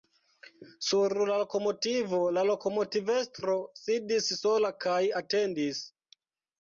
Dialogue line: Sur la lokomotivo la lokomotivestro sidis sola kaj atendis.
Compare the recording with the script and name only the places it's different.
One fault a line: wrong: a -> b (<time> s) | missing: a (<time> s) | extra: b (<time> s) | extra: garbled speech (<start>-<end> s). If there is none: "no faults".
no faults